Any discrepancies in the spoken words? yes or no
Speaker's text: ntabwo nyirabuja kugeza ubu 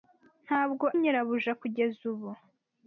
no